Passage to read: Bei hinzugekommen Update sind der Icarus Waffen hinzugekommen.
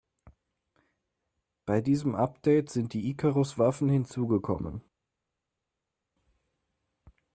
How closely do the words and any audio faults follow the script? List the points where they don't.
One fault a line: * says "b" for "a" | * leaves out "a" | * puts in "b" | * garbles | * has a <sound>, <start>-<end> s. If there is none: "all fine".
* says "diesem" for "hinzugekommen"
* says "die" for "der"